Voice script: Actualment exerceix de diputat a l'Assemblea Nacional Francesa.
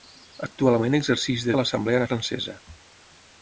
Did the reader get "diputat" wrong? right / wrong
wrong